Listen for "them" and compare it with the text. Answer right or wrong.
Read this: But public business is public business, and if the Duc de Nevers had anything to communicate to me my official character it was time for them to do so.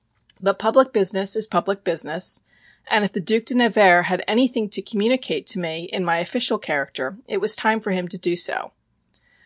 wrong